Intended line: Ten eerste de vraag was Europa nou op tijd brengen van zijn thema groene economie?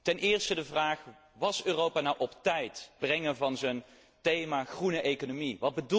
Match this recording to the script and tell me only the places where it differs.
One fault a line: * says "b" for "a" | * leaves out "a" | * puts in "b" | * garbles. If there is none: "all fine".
all fine